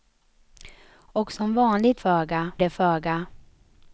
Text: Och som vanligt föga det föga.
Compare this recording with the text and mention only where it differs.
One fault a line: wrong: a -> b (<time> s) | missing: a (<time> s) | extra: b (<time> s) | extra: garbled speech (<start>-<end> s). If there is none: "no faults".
no faults